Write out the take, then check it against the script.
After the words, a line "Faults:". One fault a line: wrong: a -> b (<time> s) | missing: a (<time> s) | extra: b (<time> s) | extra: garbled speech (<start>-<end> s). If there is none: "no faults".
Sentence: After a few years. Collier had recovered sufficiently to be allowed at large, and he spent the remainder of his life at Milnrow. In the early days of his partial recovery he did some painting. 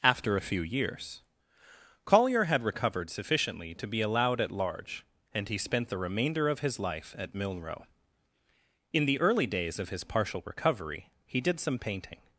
After a few years. Collier had recovered sufficiently to be allowed at large, and he spent the remainder of his life at Milnrow. In the early days of his partial recovery he did some painting.
Faults:
no faults